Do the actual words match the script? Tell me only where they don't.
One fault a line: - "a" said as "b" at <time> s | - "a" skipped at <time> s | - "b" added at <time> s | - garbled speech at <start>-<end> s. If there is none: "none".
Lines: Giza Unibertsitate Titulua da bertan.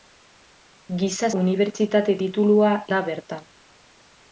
none